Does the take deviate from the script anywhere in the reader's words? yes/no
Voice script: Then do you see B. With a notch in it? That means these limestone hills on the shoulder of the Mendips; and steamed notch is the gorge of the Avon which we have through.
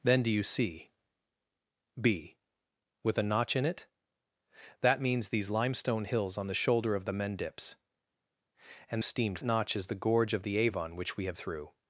no